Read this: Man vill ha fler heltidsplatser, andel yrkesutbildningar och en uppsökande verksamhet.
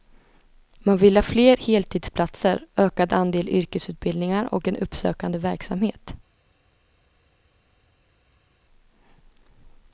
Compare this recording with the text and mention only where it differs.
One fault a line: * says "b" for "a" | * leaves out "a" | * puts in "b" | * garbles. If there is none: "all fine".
* puts in "ökad"